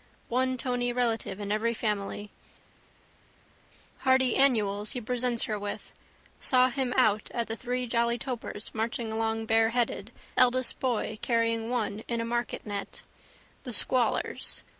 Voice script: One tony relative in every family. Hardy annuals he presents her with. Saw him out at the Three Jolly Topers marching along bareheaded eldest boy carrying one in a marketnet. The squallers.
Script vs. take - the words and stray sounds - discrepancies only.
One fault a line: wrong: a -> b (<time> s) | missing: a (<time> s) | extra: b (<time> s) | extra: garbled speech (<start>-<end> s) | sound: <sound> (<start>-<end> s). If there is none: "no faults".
no faults